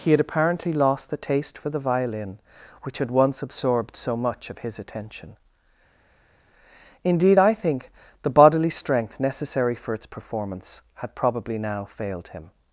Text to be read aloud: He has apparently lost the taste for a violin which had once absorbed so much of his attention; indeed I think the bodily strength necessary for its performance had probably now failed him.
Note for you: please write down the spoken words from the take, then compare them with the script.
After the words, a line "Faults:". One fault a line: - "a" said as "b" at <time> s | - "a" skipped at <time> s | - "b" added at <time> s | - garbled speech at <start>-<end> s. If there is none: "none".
He had apparently lost the taste for the violin which had once absorbed so much of his attention; indeed I think the bodily strength necessary for its performance had probably now failed him.
Faults:
- "has" said as "had" at 0.1 s
- "a" said as "the" at 1.7 s